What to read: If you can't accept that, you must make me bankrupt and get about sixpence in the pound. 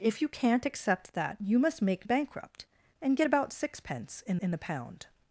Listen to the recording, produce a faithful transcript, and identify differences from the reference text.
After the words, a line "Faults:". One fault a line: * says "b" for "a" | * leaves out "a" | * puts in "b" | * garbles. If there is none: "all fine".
If you can't accept that, you must make bankrupt and get about sixpence in in the pound.
Faults:
* leaves out "me"
* puts in "in"